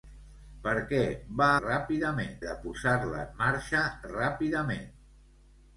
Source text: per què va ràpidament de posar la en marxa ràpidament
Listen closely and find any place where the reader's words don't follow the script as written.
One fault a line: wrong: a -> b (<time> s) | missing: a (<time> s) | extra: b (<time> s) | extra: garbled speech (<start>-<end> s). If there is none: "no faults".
no faults